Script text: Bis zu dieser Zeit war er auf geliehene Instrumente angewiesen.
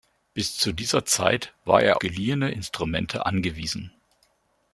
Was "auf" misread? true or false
true